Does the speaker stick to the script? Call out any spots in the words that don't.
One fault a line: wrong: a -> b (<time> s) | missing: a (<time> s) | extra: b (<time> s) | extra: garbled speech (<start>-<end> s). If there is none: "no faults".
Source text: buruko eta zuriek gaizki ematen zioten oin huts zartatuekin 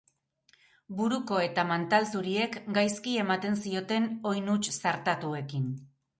extra: mantal (1.7 s)